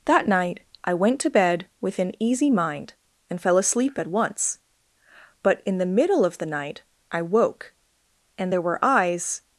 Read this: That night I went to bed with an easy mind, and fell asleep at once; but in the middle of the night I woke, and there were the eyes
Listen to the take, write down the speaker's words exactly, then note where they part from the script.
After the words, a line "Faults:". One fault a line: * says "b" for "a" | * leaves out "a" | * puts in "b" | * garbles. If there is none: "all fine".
That night I went to bed with an easy mind, and fell asleep at once; but in the middle of the night I woke, and there were eyes
Faults:
* leaves out "the"